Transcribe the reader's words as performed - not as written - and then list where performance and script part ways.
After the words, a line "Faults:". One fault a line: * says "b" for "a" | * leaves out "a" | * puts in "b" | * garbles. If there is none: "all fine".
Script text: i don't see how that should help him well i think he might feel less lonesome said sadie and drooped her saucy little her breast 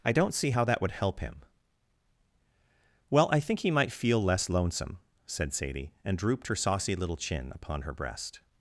i don't see how that would help him well i think he might feel less lonesome said sadie and drooped her saucy little chin upon her breast
Faults:
* says "would" for "should"
* puts in "chin upon"